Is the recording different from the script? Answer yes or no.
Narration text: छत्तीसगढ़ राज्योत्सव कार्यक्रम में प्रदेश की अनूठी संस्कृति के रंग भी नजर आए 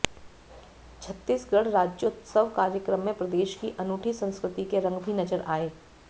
no